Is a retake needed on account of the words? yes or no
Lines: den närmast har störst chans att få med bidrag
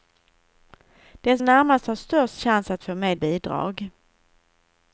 no